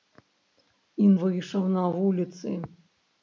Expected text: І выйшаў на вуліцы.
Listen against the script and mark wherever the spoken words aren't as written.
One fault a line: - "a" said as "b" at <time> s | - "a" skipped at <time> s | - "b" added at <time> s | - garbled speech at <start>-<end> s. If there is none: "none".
none